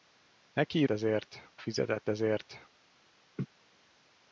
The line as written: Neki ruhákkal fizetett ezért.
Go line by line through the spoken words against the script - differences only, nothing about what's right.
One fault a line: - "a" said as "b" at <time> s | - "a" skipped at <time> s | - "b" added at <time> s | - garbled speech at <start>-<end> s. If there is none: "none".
- "ruhákkal" said as "ezért" at 0.9 s